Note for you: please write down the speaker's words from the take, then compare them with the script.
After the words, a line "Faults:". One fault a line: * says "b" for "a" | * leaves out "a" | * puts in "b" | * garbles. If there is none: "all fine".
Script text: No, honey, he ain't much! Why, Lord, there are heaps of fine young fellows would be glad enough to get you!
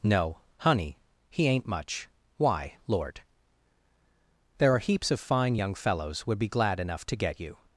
No, honey, he ain't much! Why, Lord, there are heaps of fine young fellows would be glad enough to get you!
Faults:
all fine